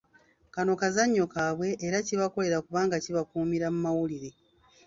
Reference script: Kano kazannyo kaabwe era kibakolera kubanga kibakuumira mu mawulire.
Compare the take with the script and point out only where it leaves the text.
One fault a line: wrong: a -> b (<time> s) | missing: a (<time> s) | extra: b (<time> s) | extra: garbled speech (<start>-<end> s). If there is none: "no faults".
no faults